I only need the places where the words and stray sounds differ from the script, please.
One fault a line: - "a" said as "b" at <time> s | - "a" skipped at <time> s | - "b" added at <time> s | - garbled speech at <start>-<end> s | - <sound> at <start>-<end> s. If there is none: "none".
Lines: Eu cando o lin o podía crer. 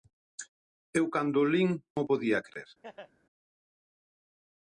- laugh at 2.8-3.1 s